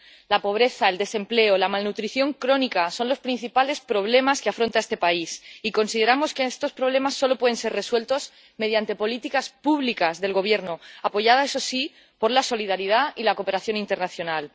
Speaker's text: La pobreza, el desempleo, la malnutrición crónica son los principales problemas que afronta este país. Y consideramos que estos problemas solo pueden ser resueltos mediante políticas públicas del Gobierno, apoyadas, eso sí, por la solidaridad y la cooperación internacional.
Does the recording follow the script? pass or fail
pass